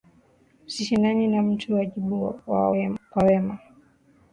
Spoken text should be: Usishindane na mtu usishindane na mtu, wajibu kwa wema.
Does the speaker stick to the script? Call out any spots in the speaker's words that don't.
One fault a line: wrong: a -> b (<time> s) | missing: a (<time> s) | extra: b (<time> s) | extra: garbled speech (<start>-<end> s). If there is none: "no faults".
missing: usishindane na mtu (1.8 s)